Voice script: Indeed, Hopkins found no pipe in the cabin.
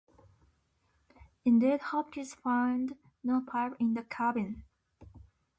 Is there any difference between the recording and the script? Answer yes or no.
no